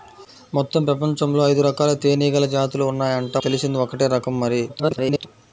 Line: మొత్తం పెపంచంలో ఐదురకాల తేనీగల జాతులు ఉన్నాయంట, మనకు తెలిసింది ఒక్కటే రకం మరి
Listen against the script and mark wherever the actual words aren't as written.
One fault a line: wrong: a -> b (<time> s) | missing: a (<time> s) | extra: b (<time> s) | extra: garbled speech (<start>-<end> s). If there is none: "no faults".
missing: మనకు (3.3 s)
extra: garbled speech (4.7-5.3 s)